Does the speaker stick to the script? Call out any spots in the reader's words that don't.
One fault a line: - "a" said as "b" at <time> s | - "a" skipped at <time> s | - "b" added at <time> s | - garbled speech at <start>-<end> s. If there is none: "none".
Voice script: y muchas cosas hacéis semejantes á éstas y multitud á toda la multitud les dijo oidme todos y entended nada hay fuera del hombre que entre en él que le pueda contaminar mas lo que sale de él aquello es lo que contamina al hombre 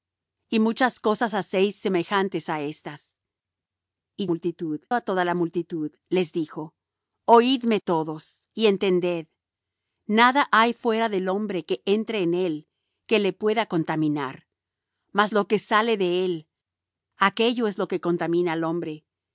none